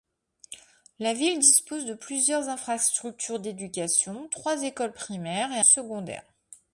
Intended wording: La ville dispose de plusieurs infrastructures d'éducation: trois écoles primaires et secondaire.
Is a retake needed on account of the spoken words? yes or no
no